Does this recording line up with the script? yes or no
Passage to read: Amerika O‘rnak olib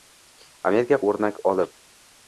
yes